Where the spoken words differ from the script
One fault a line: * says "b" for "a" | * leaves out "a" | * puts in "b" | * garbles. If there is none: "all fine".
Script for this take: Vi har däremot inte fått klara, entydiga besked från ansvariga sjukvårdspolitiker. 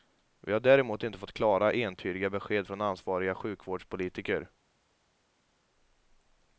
all fine